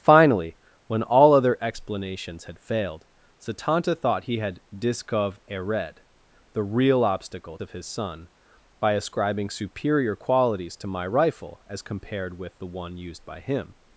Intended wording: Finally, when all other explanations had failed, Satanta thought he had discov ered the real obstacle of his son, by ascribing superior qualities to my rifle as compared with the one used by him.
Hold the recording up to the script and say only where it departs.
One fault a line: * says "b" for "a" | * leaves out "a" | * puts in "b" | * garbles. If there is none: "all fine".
all fine